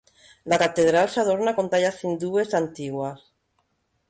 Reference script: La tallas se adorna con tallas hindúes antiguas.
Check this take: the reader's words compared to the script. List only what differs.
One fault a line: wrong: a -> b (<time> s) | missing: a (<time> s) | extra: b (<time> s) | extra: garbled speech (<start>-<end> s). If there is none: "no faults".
wrong: tallas -> catedral (0.5 s)